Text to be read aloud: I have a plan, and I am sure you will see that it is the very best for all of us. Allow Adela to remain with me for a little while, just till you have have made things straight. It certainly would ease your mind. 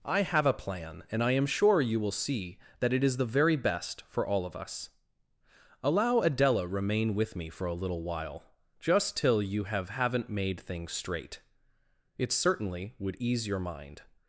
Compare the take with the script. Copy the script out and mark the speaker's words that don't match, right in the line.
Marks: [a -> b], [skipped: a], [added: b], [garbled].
I have a plan, and I am sure you will see that it is the very best for all of us. Allow Adela [skipped: to] remain with me for a little while, just till you have [have -> haven't] made things straight. It certainly would ease your mind.